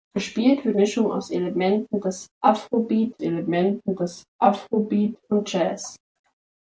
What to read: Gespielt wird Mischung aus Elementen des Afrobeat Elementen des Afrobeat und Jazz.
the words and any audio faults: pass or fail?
pass